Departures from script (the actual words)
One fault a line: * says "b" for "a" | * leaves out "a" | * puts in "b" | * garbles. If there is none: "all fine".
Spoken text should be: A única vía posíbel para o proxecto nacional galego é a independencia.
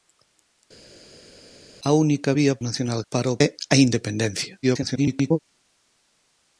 * says "nacional" for "posíbel"
* leaves out "proxecto nacional galego"
* garbles